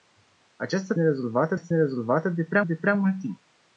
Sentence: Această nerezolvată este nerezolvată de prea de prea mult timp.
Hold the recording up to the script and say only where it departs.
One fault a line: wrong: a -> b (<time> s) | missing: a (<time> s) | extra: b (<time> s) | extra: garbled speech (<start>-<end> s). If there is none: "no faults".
no faults